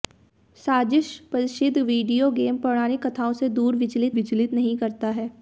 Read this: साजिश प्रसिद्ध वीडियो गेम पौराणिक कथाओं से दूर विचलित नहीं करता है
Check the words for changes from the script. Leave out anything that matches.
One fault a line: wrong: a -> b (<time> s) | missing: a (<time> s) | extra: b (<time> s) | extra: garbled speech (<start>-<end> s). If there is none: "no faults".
extra: विचलित (4.1 s)